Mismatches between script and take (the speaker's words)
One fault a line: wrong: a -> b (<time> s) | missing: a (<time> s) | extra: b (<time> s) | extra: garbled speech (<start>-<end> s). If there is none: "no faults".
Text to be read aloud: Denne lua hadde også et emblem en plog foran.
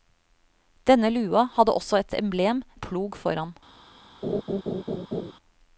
no faults